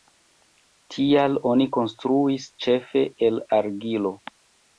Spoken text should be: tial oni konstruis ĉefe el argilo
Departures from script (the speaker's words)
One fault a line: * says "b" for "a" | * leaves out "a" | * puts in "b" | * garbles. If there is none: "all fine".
all fine